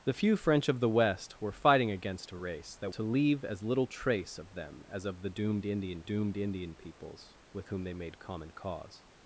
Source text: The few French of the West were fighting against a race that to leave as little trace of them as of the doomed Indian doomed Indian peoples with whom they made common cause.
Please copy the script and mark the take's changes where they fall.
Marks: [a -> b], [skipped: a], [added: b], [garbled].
The few French of the West were fighting against a race that to leave as little trace of them as of the doomed Indian doomed Indian peoples with whom they made common cause.